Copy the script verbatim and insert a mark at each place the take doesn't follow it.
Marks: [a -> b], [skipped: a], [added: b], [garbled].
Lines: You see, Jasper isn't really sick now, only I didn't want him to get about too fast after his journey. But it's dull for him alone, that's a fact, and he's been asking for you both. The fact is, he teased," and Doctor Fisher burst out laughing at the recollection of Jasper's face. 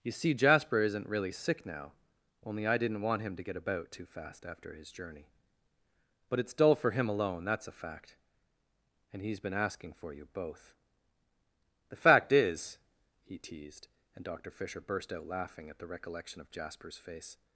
You see, Jasper isn't really sick now, only I didn't want him to get about too fast after his journey. But it's dull for him alone, that's a fact, and he's been asking for you both. The fact is, he teased," and Doctor Fisher burst out laughing at the recollection of Jasper's face.